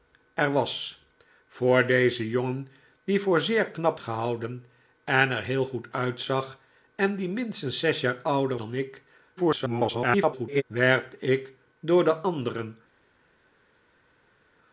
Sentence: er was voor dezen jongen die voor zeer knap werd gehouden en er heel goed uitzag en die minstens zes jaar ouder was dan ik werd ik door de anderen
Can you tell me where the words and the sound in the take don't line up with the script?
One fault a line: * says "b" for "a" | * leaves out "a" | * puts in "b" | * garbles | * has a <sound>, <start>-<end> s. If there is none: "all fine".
* leaves out "werd"
* leaves out "was"
* garbles